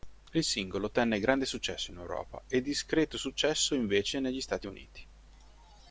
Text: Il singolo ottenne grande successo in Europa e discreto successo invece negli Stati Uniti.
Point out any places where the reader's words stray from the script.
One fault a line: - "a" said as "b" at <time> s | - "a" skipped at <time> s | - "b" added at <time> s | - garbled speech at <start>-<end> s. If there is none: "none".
none